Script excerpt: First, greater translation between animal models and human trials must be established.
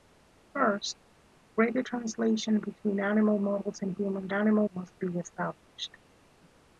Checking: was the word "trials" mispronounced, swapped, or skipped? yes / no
yes